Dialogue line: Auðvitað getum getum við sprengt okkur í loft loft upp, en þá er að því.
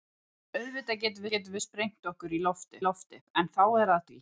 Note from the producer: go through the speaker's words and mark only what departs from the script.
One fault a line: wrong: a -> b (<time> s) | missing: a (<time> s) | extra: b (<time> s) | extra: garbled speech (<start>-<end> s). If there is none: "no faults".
no faults